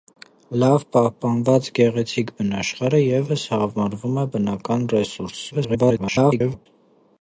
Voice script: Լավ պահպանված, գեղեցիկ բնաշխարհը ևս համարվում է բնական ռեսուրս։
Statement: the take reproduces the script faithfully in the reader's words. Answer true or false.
false